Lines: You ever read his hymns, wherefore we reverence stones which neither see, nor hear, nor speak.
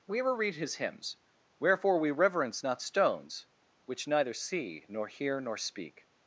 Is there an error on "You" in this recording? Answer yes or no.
yes